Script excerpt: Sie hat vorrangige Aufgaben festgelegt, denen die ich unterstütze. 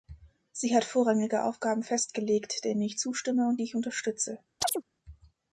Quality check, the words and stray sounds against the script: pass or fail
fail